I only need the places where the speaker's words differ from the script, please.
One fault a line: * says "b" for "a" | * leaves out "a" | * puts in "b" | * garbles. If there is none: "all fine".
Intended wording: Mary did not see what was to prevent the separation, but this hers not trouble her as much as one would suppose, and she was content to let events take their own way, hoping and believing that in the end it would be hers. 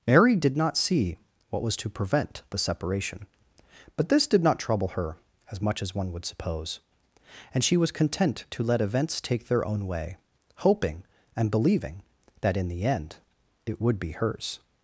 * says "did" for "hers"